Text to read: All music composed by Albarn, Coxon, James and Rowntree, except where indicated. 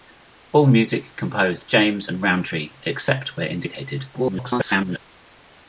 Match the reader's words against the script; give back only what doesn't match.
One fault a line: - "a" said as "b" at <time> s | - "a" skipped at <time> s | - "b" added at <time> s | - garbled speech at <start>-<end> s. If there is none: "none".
- "by Albarn Coxon" skipped at 1.7 s
- garbled speech at 4.1-5.0 s